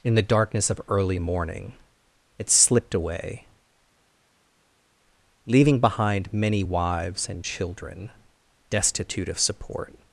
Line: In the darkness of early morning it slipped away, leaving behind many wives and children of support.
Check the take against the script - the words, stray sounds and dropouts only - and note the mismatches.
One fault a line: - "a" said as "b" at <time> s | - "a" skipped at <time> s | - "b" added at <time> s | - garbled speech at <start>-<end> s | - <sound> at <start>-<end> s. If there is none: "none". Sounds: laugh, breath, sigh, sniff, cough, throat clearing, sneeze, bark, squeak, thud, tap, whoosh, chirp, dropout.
- "destitute" added at 8.7 s